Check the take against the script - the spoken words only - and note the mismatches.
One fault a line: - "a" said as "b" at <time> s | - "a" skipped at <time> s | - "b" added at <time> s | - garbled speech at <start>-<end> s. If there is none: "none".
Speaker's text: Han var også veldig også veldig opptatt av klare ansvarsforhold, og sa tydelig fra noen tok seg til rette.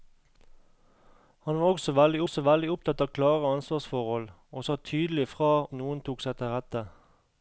none